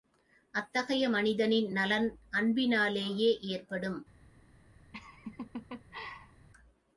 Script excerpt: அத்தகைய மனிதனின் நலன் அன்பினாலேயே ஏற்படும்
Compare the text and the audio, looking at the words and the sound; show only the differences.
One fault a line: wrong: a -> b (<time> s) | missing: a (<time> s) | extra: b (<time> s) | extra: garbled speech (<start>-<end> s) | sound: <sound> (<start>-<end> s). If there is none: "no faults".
sound: laugh (4.9-6.5 s)